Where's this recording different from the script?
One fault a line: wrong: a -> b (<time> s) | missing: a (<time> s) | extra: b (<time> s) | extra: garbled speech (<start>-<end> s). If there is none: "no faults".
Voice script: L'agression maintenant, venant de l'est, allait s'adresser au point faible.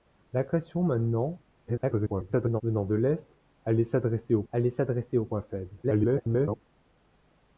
extra: garbled speech (1.7-2.6 s)
extra: allait s'adresser au (4.5 s)
extra: garbled speech (5.8-6.6 s)